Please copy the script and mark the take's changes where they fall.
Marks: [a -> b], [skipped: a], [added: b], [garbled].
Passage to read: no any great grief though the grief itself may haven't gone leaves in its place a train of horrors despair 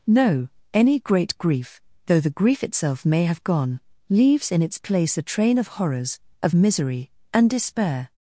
no any great grief though the grief itself may [haven't -> have] gone leaves in its place a train of horrors [added: of misery and] despair